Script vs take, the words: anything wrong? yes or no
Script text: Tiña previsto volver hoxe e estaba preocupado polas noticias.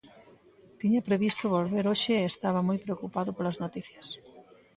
yes